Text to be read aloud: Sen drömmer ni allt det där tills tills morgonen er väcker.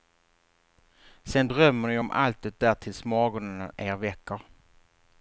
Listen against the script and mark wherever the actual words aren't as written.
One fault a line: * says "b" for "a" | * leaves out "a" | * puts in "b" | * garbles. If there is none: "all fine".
* puts in "om"
* leaves out "tills"